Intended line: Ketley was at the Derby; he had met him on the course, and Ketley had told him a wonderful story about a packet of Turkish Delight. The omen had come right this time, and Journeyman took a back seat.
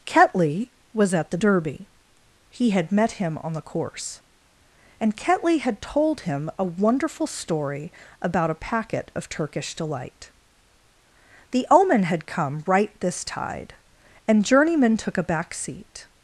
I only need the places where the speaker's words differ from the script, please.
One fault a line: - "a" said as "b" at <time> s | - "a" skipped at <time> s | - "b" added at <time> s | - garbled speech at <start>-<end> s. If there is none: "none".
- "time" said as "tide" at 13.2 s